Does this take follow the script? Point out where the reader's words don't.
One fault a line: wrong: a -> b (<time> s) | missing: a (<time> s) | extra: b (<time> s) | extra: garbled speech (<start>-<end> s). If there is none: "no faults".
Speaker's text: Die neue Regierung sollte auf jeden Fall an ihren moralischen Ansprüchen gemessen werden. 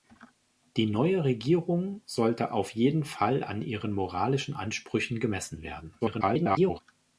extra: garbled speech (6.0-6.8 s)